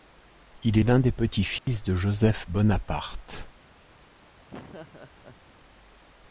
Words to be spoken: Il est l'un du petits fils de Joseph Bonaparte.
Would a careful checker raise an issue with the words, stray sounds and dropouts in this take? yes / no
yes